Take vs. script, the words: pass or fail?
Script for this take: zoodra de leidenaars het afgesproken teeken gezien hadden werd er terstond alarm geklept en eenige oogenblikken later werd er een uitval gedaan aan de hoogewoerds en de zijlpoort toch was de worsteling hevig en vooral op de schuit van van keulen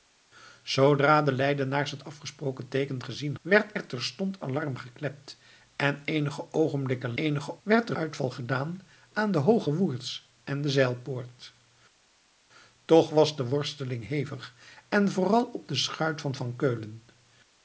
fail